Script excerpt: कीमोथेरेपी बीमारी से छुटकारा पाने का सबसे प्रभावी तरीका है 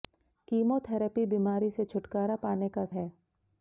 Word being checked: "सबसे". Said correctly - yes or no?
no